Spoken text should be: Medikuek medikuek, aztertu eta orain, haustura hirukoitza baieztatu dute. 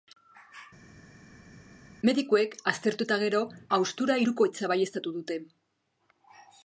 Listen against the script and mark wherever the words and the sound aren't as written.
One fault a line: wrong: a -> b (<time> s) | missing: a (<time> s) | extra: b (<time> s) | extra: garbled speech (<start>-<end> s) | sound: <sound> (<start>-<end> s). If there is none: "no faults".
missing: medikuek (2.6 s)
wrong: orain -> gero (3.3 s)